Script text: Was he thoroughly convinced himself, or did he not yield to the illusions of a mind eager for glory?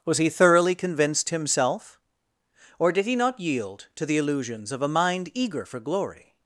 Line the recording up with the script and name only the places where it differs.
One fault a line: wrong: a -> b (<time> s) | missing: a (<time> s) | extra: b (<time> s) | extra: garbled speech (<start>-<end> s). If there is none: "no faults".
no faults